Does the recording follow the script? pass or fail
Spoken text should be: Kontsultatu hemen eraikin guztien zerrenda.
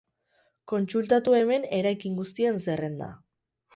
pass